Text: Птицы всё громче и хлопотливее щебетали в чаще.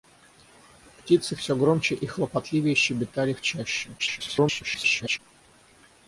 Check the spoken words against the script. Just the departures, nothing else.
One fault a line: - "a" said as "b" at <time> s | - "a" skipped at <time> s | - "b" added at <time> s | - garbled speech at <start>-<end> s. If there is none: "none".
- garbled speech at 4.0-5.2 s